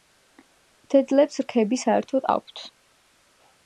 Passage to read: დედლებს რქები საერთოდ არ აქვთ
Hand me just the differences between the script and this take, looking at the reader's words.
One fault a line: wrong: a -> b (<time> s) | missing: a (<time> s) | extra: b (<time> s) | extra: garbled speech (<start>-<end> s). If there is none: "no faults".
missing: არ (2.3 s)